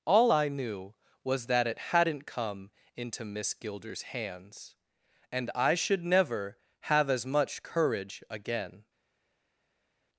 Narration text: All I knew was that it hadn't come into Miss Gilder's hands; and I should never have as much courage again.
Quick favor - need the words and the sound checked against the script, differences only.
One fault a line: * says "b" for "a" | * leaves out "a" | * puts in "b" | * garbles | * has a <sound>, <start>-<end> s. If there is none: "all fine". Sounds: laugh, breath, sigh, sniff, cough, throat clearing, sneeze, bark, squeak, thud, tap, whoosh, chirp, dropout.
all fine